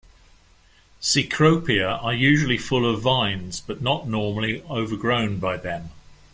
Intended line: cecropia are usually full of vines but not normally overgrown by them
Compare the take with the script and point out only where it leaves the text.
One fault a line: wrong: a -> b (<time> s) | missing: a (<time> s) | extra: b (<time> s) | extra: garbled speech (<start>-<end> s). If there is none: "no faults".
no faults